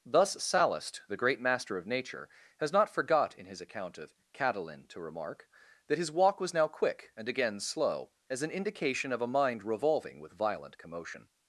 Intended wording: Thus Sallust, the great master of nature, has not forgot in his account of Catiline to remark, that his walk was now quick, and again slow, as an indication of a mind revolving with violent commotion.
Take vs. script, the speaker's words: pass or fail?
pass